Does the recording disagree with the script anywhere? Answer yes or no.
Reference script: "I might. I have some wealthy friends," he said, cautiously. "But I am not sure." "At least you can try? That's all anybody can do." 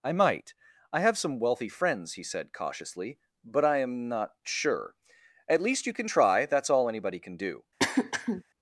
no